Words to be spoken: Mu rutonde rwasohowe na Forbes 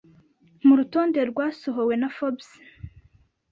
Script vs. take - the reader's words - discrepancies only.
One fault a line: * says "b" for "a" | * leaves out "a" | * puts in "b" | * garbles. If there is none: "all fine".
all fine